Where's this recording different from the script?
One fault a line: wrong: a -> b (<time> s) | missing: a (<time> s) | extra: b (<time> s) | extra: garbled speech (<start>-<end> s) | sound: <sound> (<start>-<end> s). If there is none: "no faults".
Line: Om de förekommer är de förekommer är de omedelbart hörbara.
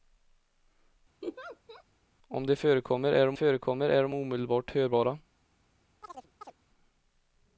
sound: laugh (1.2-1.8 s)
sound: chirp (6.0-6.5 s)